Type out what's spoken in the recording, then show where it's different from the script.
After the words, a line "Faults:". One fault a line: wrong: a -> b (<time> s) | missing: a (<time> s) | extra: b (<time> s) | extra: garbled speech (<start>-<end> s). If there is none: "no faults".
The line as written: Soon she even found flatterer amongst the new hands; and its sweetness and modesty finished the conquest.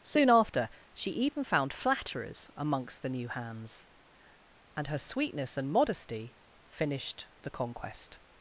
Soon after, she even found flatterers amongst the new hands; and her sweetness and modesty finished the conquest.
Faults:
extra: after (0.3 s)
wrong: flatterer -> flatterers (1.7 s)
wrong: its -> her (4.9 s)